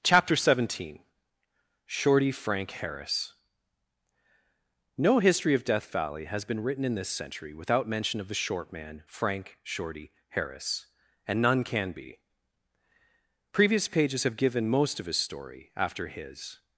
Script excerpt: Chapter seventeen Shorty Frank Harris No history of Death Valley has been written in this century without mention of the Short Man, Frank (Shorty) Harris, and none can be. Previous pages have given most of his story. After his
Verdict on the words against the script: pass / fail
pass